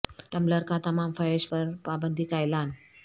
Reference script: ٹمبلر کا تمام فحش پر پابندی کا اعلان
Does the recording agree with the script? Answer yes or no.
yes